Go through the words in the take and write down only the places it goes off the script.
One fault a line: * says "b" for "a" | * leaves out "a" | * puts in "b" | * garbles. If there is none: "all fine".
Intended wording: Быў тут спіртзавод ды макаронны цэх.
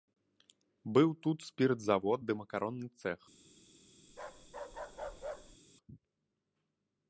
all fine